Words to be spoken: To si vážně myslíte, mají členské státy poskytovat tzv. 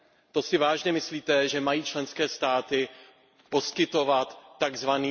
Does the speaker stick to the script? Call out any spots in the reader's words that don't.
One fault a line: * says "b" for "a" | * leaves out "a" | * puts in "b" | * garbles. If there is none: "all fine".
* puts in "že"